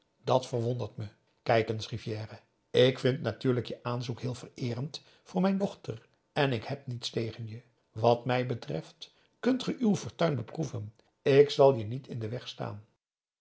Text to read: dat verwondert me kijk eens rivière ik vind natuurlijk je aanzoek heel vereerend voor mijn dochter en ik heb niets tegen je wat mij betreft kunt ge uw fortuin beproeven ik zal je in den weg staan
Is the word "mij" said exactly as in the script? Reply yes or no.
yes